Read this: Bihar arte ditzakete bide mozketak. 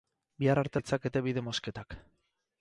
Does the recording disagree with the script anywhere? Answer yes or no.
no